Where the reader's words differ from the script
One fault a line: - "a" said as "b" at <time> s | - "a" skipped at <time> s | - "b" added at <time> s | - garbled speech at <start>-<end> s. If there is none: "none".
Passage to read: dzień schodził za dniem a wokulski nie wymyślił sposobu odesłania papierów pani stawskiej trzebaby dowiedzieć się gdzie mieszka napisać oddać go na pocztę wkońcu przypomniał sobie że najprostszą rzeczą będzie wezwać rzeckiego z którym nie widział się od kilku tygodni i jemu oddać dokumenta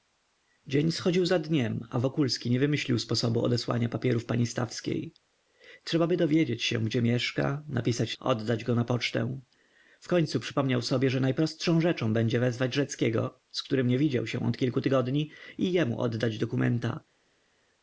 none